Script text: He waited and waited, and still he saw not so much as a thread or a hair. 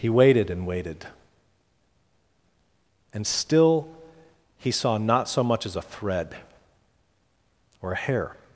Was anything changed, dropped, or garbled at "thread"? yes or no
no